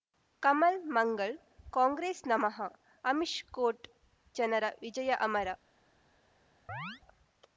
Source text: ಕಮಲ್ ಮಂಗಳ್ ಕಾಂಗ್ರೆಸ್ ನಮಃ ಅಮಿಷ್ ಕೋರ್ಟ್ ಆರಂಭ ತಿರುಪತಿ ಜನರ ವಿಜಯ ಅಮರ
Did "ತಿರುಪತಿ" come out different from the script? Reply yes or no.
yes